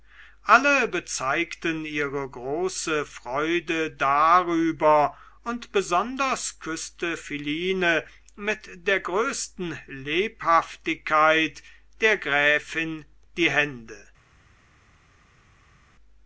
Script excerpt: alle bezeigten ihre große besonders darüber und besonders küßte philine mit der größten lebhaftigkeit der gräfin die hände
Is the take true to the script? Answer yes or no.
no